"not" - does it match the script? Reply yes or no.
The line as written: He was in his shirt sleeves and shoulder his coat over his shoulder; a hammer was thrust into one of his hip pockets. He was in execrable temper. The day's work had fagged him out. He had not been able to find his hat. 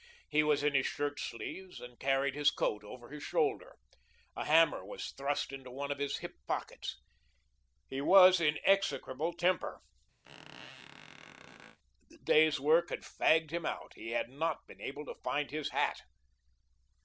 yes